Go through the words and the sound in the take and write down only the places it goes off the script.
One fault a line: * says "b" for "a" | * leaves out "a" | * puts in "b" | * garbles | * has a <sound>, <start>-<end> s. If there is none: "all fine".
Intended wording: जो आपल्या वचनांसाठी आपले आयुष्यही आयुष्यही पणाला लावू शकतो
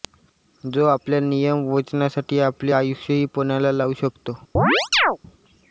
* puts in "नियम"
* leaves out "आयुष्यही"
* has a chirp, 4.6-5.2 s